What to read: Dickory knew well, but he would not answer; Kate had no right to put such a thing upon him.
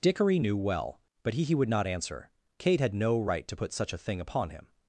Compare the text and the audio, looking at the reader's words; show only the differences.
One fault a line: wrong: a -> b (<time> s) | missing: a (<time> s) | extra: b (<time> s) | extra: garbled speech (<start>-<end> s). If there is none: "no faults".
extra: he (1.4 s)